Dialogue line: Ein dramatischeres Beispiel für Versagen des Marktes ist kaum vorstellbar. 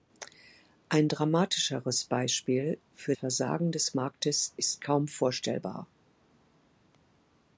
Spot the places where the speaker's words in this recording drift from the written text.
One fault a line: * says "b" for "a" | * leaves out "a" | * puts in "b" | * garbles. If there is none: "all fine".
all fine